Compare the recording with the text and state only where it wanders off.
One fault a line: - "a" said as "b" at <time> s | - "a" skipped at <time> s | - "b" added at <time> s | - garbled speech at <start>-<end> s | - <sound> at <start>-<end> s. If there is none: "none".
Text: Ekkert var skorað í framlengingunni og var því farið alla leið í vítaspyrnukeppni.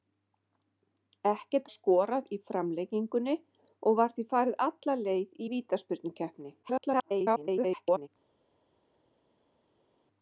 - "var" skipped at 1.7 s
- garbled speech at 6.6-8.1 s